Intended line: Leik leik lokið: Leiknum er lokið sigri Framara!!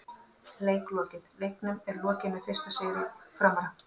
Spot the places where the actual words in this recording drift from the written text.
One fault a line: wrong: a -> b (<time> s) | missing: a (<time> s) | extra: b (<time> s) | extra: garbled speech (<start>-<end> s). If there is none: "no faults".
missing: leik (0.9 s)
extra: með fyrsta (2.4 s)